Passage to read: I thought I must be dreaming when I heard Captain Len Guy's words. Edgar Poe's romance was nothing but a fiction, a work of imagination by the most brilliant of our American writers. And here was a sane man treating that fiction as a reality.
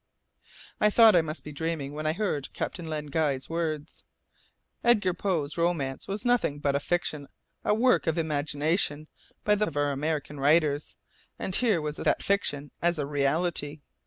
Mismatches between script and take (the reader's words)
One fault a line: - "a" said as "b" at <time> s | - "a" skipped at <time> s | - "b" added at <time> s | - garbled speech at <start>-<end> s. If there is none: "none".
- "most brilliant" skipped at 9.7 s
- "sane man treating" skipped at 12.0 s